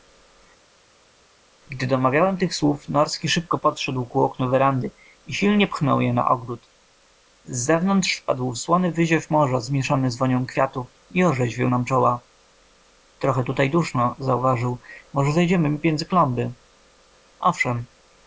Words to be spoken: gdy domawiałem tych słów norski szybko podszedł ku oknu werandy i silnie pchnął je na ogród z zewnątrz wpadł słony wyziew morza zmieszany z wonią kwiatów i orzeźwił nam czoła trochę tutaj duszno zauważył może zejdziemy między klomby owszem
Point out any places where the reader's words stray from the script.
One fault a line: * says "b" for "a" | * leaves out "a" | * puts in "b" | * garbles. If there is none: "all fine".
all fine